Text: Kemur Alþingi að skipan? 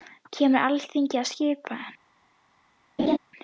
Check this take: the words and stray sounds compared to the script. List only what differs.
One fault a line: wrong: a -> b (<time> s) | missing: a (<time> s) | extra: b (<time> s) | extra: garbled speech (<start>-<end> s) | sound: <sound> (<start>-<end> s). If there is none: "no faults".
sound: laugh (3.0-3.2 s)